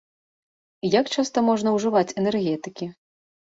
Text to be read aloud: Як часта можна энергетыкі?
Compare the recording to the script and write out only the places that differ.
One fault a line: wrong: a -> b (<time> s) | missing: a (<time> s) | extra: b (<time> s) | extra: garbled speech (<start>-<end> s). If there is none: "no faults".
extra: ўжываць (1.8 s)